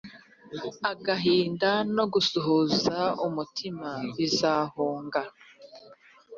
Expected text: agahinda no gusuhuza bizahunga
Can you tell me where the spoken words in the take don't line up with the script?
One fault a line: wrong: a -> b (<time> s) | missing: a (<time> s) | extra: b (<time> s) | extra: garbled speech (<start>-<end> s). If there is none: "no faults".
extra: umutima (3.3 s)